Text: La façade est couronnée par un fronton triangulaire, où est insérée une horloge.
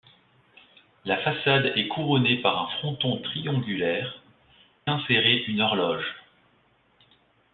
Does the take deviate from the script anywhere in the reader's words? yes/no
yes